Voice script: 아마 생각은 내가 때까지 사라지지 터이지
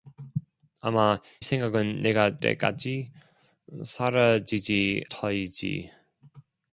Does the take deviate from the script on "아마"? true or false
false